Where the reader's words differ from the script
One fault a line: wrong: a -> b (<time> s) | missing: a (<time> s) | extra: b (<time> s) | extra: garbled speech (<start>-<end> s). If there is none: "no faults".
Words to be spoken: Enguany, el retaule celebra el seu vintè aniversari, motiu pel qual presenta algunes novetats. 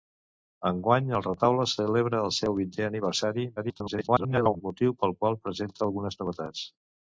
extra: garbled speech (3.6-4.6 s)